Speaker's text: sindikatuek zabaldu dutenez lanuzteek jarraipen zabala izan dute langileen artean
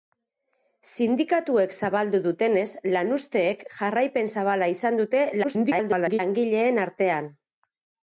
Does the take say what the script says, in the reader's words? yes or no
no